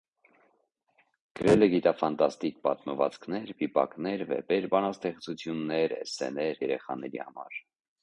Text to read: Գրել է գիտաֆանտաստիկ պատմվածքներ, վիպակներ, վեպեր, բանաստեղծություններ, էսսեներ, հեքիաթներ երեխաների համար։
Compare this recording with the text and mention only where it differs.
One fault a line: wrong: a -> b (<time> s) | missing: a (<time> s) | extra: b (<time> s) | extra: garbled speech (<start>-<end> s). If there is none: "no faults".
missing: հեքիաթներ (6.6 s)